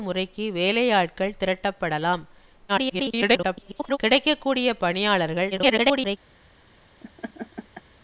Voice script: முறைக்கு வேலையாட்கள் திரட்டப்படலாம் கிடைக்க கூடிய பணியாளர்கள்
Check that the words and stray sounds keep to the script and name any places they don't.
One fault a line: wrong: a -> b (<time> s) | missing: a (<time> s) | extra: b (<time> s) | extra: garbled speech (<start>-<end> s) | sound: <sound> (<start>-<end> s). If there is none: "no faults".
extra: garbled speech (2.7-4.0 s)
extra: garbled speech (5.5-6.2 s)
sound: laugh (7.0-7.8 s)